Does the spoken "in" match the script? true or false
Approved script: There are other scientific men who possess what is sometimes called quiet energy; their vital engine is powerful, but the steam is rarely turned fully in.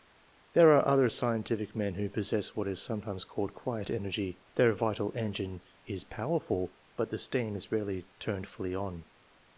false